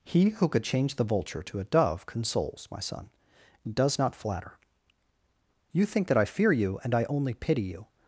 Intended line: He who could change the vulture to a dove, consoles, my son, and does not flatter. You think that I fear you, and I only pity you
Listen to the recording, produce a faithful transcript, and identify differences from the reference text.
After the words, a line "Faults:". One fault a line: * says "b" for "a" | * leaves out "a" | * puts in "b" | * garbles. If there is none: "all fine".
He who could change the vulture to a dove, consoles, my son, and does not flatter. You think that I fear you, and I only pity you
Faults:
all fine